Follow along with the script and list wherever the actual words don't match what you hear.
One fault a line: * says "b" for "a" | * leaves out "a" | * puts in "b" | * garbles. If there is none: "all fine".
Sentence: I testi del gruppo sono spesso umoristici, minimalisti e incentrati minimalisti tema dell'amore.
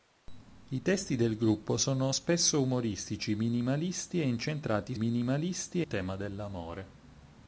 all fine